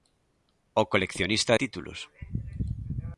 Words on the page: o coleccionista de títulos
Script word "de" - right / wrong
wrong